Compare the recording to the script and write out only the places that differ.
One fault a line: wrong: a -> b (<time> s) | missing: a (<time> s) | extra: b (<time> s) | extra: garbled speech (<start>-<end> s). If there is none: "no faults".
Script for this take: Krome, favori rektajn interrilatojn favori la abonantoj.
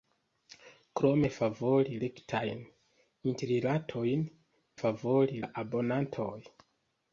no faults